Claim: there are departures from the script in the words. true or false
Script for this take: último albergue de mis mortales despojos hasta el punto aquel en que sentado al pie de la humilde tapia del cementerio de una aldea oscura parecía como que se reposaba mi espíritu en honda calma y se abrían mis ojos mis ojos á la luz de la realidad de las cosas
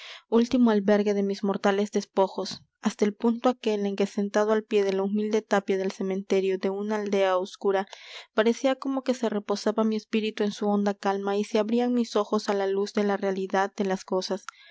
true